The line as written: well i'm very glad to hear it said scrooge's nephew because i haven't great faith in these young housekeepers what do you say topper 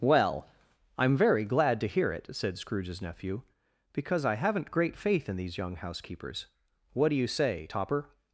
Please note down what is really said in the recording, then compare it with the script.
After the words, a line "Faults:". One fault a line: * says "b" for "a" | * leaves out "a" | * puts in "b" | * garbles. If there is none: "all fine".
well i'm very glad to hear it said scrooge's nephew because i haven't great faith in these young housekeepers what do you say topper
Faults:
all fine